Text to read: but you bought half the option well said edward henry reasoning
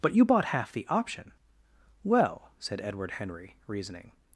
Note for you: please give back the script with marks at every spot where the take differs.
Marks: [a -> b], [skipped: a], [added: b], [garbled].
but you bought half the option well said edward henry reasoning